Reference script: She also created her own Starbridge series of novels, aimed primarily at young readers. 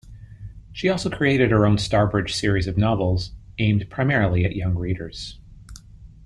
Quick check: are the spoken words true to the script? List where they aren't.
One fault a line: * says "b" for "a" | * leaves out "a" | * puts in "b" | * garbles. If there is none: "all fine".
all fine